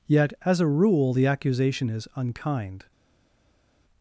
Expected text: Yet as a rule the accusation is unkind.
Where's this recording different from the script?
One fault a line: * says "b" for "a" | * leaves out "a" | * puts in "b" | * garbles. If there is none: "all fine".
all fine